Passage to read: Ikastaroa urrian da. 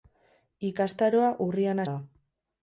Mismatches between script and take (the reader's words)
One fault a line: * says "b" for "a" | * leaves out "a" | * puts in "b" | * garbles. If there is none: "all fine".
all fine